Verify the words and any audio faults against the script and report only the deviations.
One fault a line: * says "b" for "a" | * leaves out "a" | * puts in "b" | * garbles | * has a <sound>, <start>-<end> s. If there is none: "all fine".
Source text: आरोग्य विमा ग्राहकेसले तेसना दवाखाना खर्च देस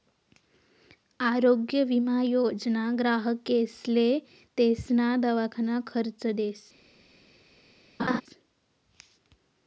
* puts in "योजना"
* has a laugh, 8.0-8.2 s